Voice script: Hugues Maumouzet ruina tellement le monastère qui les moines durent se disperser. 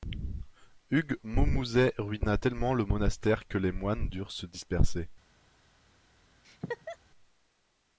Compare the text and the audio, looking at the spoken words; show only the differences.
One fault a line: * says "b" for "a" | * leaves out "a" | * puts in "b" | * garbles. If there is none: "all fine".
* says "que" for "qui"